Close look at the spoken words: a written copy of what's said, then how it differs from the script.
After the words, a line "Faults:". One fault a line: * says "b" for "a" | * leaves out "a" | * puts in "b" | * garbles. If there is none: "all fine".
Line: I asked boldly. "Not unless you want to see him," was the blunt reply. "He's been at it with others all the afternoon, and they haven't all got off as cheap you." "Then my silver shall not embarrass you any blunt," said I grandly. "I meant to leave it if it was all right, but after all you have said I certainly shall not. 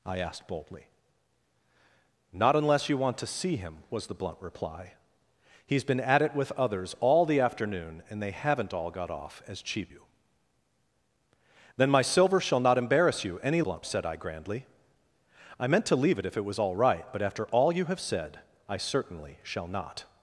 I asked boldly. "Not unless you want to see him," was the blunt reply. "He's been at it with others all the afternoon, and they haven't all got off as cheap you." "Then my silver shall not embarrass you any blunt," said I grandly. "I meant to leave it if it was all right, but after all you have said I certainly shall not.
Faults:
all fine